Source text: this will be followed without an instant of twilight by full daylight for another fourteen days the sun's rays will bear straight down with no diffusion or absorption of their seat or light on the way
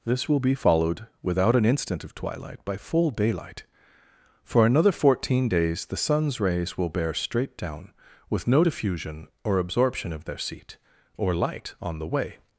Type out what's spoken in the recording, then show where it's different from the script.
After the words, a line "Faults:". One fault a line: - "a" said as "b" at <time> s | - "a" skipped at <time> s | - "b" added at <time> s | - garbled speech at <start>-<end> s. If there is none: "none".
this will be followed without an instant of twilight by full daylight for another fourteen days the sun's rays will bear straight down with no diffusion or absorption of their seat or light on the way
Faults:
none